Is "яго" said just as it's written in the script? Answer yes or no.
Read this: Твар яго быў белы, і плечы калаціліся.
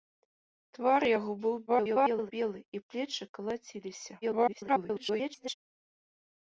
yes